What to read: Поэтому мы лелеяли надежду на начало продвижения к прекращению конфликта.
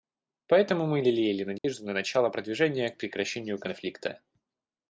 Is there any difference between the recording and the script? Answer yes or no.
no